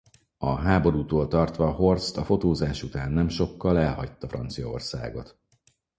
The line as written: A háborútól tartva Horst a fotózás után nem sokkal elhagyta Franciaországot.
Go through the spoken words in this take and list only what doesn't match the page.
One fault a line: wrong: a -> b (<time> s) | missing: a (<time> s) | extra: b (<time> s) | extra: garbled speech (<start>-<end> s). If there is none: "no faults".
no faults